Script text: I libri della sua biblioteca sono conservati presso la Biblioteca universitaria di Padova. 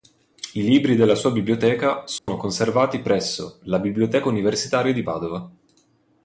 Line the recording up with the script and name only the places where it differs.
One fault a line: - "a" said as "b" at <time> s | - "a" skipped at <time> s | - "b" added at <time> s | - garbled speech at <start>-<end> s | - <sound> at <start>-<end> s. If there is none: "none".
- dropout at 2.2-2.3 s